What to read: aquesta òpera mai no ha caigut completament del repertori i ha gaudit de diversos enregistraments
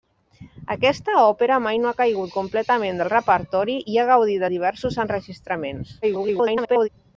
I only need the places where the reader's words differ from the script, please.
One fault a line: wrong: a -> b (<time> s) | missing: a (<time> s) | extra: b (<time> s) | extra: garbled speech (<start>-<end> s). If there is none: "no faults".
extra: garbled speech (6.0-6.9 s)